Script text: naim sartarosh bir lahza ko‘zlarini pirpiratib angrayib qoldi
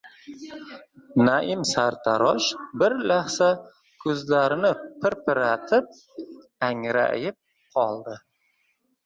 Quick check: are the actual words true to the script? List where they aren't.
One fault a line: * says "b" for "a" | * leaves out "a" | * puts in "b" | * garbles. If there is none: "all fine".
all fine